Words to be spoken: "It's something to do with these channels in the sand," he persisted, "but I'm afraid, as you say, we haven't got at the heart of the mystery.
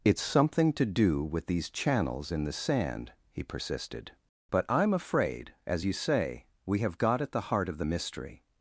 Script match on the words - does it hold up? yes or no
no